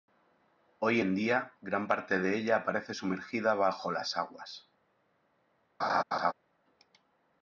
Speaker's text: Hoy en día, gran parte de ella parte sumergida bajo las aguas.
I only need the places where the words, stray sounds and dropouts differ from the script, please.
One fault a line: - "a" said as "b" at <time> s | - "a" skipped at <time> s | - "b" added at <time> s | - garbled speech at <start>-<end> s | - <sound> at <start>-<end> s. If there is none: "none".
- "parte" said as "aparece" at 2.6 s
- laugh at 5.8-6.3 s